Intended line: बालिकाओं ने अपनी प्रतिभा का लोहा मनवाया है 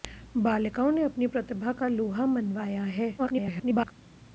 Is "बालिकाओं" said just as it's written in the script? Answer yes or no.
yes